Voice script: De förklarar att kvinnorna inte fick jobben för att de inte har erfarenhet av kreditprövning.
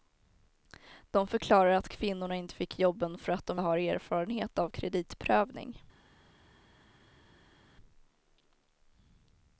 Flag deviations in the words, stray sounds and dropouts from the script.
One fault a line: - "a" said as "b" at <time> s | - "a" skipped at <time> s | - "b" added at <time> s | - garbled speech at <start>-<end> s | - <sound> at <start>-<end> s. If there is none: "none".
- "inte" skipped at 3.6 s